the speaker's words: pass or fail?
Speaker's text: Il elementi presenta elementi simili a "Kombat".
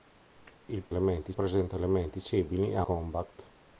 pass